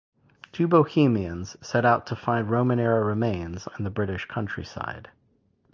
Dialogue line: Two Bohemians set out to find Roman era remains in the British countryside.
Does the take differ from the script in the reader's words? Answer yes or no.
no